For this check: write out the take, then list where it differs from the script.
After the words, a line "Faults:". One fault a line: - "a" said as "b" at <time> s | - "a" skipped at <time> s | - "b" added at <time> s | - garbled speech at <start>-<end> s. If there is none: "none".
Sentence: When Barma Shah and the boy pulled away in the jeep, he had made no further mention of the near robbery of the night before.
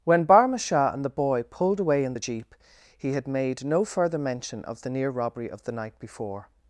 When Barma Shah and the boy pulled away in the jeep, he had made no further mention of the near robbery of the night before.
Faults:
none